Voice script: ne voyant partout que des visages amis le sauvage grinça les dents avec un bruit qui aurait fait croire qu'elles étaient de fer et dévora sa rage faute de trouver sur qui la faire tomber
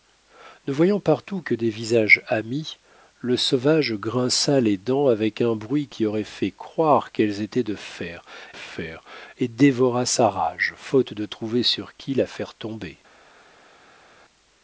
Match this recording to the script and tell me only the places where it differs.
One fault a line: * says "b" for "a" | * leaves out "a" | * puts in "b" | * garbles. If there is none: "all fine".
* puts in "fer"